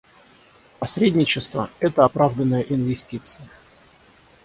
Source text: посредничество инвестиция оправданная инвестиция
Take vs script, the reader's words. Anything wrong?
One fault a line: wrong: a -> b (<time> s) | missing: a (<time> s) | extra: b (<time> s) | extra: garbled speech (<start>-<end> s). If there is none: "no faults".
wrong: инвестиция -> это (1.8 s)